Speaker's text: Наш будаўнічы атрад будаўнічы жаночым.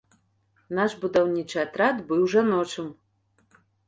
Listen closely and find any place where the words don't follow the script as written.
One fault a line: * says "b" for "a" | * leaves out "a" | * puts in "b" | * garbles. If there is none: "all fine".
* says "быў" for "будаўнічы"